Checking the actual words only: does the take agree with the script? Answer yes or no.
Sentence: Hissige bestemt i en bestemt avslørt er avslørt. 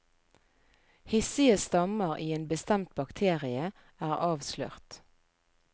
no